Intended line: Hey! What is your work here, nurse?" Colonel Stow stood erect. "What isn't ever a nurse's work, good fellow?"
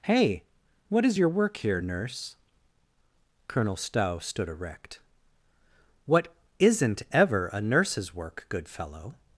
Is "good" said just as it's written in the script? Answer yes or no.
yes